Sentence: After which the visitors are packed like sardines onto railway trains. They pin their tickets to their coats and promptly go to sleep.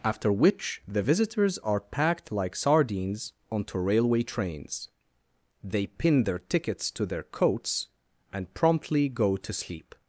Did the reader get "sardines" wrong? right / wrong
right